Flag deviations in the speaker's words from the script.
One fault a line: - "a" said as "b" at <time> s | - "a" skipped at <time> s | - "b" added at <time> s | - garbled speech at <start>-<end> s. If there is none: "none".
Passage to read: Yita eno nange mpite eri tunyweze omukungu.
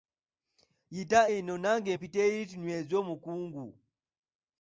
none